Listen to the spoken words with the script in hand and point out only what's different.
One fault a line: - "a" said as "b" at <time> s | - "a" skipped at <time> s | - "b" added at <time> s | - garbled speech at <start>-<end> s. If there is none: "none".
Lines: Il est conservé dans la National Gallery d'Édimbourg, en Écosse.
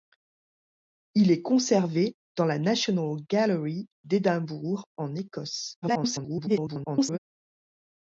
- garbled speech at 5.8-7.2 s